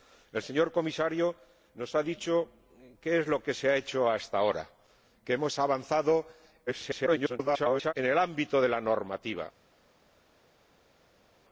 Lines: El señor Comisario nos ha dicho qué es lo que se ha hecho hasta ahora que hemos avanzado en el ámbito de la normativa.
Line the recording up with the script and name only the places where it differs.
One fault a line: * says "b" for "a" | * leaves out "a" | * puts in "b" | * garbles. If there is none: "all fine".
* garbles